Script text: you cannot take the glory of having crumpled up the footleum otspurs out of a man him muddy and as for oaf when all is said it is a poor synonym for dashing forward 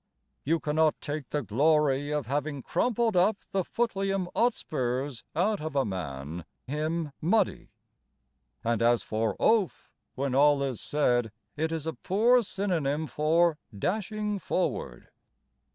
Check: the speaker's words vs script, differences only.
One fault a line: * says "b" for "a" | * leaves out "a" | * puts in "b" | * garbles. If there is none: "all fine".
all fine